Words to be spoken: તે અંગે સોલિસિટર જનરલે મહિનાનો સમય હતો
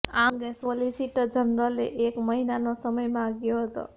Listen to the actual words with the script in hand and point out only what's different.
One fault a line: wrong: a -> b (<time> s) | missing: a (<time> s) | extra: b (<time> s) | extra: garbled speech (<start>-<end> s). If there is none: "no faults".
wrong: તે -> આ (0.1 s)
extra: એક (2.1 s)
extra: માંગ્યો (3.1 s)